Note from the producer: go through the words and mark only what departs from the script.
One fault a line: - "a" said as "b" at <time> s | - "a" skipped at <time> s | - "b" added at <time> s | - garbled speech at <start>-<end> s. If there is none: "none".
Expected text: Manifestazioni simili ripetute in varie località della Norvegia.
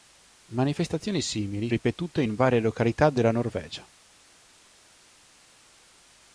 none